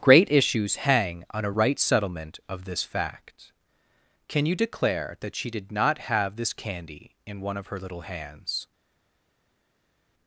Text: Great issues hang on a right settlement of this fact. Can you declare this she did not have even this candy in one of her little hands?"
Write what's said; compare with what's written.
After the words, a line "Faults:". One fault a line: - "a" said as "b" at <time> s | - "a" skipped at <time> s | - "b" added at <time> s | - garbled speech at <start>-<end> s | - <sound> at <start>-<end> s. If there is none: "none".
Great issues hang on a right settlement of this fact. Can you declare that she did not have this candy in one of her little hands?"
Faults:
- "this" said as "that" at 5.2 s
- "even" skipped at 6.4 s